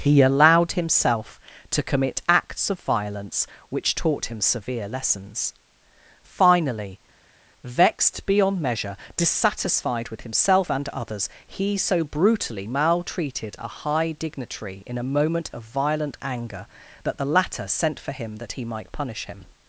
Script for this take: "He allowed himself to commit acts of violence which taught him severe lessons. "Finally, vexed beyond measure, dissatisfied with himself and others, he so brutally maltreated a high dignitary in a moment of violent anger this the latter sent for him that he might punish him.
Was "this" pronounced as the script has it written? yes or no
no